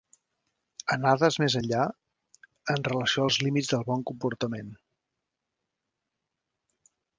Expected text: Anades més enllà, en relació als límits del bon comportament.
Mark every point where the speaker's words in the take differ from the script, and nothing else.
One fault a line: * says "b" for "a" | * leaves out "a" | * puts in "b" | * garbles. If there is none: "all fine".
all fine